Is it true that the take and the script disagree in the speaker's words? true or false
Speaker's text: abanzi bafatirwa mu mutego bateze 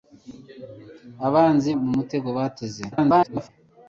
true